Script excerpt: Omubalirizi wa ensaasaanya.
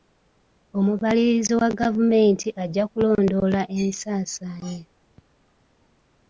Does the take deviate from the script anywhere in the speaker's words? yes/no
yes